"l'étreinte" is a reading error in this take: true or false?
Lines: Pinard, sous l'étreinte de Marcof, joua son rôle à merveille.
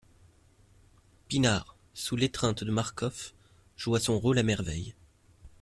false